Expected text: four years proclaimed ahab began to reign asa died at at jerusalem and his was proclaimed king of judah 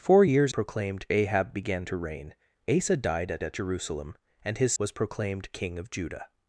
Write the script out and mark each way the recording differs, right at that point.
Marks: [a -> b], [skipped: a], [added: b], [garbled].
four years proclaimed ahab began to reign asa died at at jerusalem and his was proclaimed king of judah